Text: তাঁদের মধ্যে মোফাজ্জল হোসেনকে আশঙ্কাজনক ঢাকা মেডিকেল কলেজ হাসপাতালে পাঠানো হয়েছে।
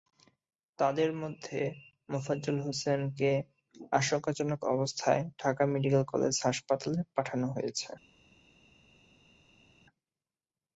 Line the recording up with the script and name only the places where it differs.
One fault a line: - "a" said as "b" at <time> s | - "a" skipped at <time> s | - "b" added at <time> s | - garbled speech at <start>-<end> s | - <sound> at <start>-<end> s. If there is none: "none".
- "অবস্থায়" added at 4.7 s